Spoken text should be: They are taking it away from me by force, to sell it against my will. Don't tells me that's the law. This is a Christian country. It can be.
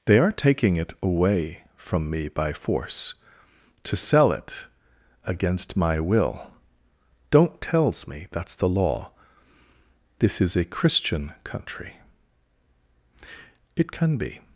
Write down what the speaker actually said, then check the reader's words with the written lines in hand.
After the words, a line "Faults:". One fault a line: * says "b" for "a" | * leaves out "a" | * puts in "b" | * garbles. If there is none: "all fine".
They are taking it away from me by force, to sell it against my will. Don't tells me that's the law. This is a Christian country. It can be.
Faults:
all fine